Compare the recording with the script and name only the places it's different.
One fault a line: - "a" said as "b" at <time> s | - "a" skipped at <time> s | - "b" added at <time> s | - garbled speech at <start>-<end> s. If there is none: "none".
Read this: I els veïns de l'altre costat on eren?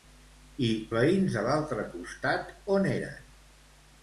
- "els" skipped at 0.7 s